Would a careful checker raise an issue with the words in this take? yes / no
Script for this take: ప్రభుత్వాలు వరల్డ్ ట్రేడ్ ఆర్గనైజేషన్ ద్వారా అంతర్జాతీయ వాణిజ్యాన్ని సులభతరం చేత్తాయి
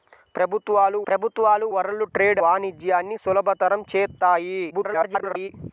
yes